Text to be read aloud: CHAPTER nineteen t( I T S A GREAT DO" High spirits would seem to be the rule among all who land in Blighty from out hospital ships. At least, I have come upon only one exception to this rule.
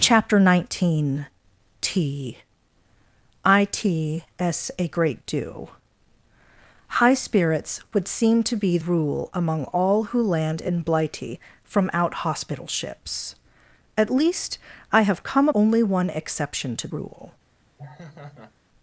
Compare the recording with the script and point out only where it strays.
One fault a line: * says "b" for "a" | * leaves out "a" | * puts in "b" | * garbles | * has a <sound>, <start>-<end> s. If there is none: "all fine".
* leaves out "the"
* leaves out "upon"
* leaves out "this"
* has a laugh, 17.8-18.5 s